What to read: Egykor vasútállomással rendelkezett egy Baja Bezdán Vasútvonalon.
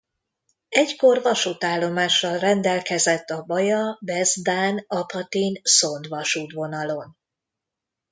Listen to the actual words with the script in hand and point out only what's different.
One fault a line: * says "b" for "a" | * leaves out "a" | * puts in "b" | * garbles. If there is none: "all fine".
* says "a" for "egy"
* puts in "Apatin Szond"